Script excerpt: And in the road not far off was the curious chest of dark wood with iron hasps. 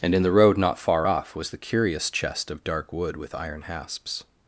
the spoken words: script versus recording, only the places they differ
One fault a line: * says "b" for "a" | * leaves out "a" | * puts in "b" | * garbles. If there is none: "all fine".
all fine